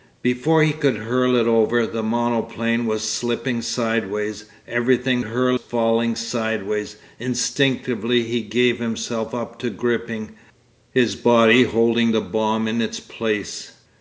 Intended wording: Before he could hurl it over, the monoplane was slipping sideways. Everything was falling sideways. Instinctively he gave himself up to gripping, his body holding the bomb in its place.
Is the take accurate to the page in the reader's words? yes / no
no